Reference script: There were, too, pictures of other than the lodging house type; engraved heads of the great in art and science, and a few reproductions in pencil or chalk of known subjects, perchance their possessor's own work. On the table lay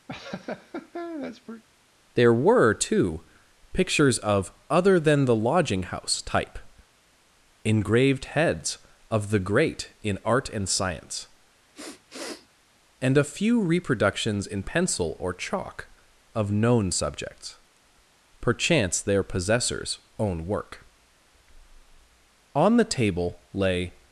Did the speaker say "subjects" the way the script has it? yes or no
yes